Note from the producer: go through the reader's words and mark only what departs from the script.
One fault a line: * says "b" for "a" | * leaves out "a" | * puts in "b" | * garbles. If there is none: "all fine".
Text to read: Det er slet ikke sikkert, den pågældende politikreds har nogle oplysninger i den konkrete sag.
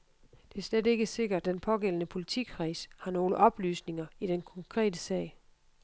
all fine